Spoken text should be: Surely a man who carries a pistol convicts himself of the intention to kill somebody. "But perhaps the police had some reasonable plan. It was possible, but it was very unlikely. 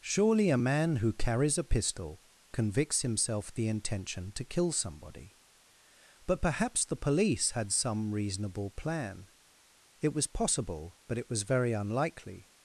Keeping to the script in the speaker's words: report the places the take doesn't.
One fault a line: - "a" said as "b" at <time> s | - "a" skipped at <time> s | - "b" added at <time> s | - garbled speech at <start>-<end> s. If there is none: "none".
- "of" skipped at 3.5 s